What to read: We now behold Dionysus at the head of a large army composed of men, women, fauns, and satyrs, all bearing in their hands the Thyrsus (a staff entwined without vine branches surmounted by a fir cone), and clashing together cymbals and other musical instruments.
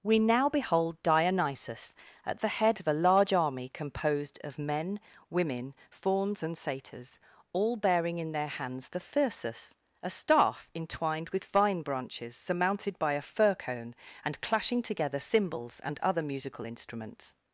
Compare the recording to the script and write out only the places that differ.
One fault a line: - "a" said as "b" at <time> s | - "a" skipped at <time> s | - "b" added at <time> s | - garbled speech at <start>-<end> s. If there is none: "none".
- "without" said as "with" at 11.3 s